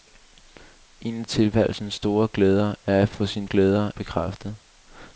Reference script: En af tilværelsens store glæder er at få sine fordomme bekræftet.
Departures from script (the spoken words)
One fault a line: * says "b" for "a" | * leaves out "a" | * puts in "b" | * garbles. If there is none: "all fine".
* says "glæder" for "fordomme"